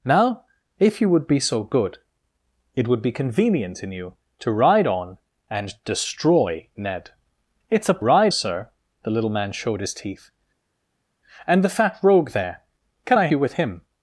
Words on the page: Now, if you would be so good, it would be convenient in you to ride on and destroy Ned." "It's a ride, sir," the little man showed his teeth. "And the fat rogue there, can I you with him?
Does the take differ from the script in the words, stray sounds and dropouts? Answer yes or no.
no